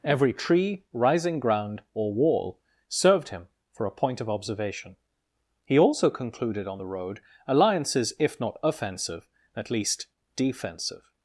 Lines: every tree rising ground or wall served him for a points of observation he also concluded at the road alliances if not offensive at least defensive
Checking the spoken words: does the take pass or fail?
fail